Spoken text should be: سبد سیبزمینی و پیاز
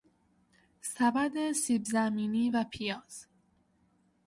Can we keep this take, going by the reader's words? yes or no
yes